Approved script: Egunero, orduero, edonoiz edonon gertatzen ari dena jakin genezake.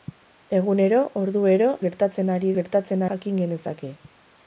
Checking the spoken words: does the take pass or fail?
fail